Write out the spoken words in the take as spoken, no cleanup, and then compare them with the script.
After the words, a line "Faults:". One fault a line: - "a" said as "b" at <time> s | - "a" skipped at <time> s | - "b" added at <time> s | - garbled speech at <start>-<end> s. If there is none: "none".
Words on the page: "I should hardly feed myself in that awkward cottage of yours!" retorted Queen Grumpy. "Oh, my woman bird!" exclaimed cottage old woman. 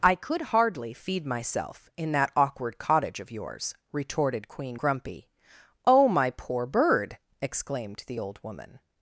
"I could hardly feed myself in that awkward cottage of yours!" retorted Queen Grumpy. "Oh, my poor bird!" exclaimed the old woman.
Faults:
- "should" said as "could" at 0.1 s
- "woman" said as "poor" at 6.3 s
- "cottage" said as "the" at 8.1 s